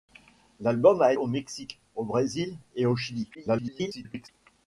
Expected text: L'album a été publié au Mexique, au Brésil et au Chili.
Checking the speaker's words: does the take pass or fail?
fail